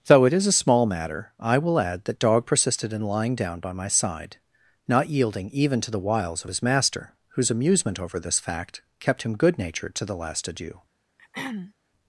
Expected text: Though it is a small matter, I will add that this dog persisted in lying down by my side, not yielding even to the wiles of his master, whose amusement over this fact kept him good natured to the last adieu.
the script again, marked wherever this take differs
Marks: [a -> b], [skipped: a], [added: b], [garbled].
Though it is a small matter, I will add that [skipped: this] dog persisted in lying down by my side, not yielding even to the wiles of his master, whose amusement over this fact kept him good natured to the last adieu.